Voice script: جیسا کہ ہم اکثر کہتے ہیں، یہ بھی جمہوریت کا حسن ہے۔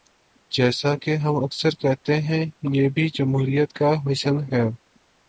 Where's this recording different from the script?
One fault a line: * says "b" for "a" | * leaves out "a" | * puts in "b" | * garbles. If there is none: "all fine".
all fine